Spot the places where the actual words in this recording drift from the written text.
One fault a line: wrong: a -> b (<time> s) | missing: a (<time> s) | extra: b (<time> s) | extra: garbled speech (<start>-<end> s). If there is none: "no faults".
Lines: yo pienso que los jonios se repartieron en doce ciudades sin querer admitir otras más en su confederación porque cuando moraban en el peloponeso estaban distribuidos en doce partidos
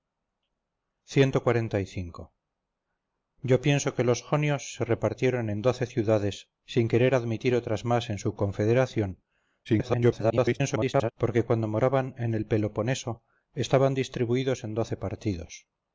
extra: garbled speech (9.6-11.1 s)